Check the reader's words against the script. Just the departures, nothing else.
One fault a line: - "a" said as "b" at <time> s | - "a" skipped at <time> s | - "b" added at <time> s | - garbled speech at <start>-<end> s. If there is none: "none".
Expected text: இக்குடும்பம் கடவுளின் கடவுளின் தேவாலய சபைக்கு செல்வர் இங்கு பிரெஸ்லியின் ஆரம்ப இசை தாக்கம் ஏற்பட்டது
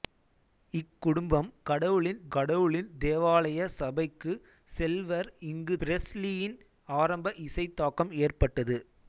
none